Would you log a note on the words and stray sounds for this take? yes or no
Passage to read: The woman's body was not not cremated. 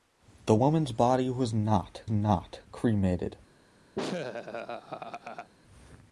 yes